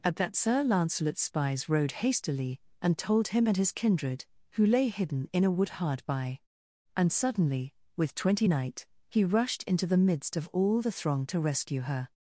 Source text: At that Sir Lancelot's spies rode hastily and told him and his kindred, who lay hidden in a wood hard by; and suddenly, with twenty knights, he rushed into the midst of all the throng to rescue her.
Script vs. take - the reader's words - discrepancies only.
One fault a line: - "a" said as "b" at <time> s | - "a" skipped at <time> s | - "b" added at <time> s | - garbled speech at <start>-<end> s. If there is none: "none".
- "knights" said as "knight" at 8.5 s